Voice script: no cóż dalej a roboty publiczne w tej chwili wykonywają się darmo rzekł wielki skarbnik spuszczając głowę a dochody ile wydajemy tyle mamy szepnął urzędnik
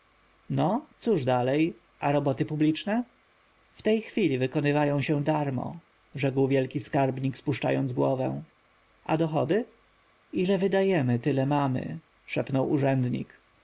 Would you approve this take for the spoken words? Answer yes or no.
yes